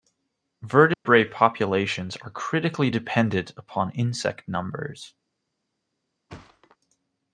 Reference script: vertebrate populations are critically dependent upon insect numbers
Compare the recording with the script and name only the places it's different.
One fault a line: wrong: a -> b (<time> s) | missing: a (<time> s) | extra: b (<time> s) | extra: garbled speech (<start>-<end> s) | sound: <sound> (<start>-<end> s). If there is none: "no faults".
sound: dropout (0.9-1.1 s)
sound: thud (6.3-6.8 s)